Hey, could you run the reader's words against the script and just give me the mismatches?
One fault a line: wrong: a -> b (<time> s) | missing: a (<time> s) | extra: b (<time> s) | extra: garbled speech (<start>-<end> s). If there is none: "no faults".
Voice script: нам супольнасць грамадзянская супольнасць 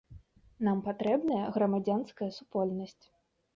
wrong: супольнасць -> патрэбная (0.9 s)